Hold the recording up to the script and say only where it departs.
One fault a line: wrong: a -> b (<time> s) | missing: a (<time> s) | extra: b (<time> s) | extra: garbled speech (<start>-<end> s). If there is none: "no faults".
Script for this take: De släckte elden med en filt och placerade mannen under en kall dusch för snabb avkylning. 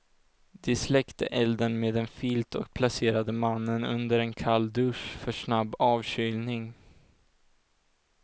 no faults